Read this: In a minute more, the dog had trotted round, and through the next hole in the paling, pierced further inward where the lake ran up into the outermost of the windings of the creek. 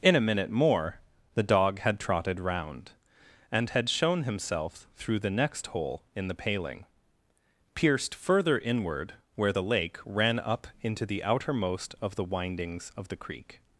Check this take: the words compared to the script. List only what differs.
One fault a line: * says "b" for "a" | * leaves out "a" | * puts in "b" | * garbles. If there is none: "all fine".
* puts in "had shown himself"